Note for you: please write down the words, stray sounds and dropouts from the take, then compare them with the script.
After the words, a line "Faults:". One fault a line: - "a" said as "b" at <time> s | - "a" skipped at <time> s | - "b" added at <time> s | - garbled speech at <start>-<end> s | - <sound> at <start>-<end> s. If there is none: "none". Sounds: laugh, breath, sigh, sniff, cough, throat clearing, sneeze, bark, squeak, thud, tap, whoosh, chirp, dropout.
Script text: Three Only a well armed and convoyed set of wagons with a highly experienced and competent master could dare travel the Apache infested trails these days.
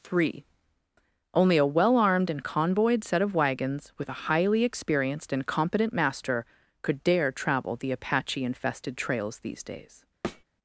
Three Only a well armed and convoyed set of wagons with a highly experienced and competent master could dare travel the Apache infested trails these days.
Faults:
- thud at 10.2-10.4 s